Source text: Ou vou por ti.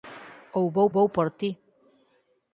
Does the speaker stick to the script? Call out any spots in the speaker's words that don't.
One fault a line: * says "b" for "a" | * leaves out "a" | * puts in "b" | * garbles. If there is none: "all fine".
* puts in "vou"